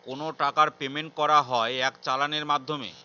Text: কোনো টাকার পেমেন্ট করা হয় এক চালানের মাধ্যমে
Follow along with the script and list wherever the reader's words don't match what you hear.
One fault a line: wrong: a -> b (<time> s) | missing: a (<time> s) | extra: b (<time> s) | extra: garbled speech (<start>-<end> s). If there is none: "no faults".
no faults